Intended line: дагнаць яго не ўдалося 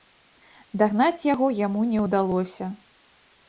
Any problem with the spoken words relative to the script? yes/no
yes